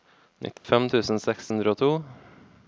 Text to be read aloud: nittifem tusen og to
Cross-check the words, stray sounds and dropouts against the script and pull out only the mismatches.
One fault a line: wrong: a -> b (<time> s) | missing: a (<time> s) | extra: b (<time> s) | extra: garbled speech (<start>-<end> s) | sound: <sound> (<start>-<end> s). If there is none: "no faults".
sound: dropout (0.6-0.6 s)
extra: seks hundre (1.3 s)